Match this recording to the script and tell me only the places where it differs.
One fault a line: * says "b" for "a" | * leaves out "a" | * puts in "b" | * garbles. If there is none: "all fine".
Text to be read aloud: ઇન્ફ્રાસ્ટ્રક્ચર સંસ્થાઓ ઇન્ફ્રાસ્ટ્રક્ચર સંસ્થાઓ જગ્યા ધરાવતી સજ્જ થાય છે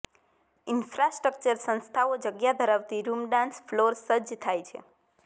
* says "જગ્યા ધરાવતી રૂમ ડાન્સ ફ્લોર" for "ઇન્ફ્રાસ્ટ્રક્ચર સંસ્થાઓ જગ્યા ધરાવતી"